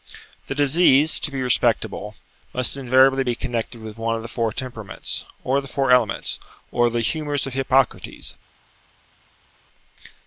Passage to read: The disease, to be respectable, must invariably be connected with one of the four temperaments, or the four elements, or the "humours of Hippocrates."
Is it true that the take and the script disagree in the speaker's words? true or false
false